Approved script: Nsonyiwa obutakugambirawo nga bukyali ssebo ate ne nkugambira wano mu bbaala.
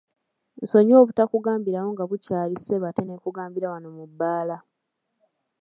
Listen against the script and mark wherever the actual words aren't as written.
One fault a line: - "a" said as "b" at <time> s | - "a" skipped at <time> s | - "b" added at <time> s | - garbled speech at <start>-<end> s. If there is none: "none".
none